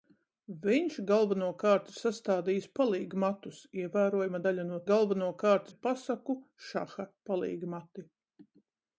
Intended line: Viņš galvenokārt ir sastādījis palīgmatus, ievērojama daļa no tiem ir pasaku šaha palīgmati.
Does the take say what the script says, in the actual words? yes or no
no